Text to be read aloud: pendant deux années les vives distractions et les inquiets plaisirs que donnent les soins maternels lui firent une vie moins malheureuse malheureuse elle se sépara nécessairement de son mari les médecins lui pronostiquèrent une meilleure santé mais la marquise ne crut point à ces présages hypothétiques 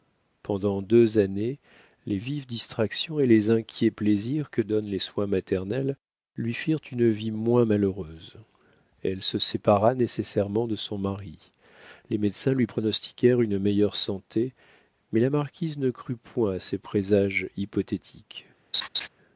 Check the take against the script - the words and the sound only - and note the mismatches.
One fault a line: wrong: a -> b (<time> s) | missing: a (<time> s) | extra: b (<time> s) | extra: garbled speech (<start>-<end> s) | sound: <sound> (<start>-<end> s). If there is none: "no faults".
missing: malheureuse (8.4 s)
sound: laugh (18.7-19.1 s)